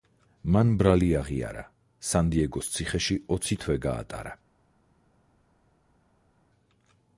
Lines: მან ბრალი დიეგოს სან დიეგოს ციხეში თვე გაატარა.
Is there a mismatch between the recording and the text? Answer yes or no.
yes